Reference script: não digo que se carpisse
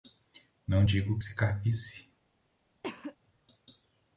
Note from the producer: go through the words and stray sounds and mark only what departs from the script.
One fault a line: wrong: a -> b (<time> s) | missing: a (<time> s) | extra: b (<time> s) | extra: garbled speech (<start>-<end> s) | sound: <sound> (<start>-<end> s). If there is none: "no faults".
sound: cough (2.8-3.2 s)